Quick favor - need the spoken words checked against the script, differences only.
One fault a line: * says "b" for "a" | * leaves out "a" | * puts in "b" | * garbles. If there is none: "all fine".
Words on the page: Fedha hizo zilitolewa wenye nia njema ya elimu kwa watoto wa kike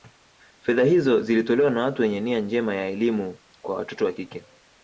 * puts in "na watu"